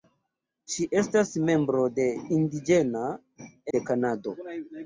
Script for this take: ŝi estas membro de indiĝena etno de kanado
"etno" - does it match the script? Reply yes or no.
no